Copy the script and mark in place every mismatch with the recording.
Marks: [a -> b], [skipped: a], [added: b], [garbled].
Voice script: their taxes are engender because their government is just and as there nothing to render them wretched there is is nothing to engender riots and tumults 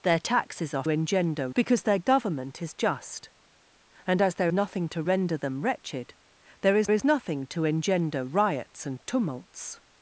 their taxes are engender because their government is just and as there nothing to render them wretched there is is nothing to engender riots and tumults